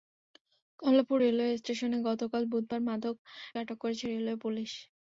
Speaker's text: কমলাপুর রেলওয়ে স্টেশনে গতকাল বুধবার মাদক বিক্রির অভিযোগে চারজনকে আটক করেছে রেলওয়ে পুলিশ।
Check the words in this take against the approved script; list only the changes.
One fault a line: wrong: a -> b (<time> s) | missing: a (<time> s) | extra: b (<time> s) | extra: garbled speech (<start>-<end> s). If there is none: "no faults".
missing: বিক্রির অভিযোগে চারজনকে (3.1 s)